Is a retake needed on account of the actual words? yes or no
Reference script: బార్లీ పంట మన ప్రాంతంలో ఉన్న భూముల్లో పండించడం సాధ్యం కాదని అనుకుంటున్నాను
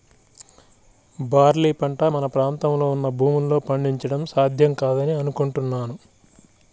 no